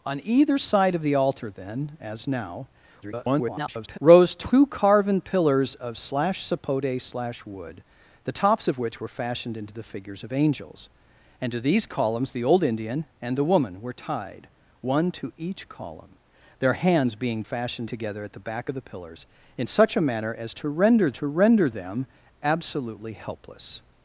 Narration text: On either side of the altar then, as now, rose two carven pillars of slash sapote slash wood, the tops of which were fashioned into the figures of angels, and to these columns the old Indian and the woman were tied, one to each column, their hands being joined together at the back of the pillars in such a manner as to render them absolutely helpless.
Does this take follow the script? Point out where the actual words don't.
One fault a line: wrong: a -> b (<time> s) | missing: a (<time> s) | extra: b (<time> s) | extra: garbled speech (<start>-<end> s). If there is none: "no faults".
extra: garbled speech (3.0-4.0 s)
wrong: joined -> fashioned (17.4 s)
extra: to render (21.1 s)